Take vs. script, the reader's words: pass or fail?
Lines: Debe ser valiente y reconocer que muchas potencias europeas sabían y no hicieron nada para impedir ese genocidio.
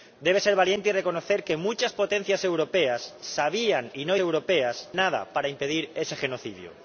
fail